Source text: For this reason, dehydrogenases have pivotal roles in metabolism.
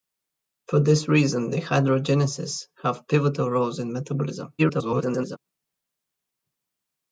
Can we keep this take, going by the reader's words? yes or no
no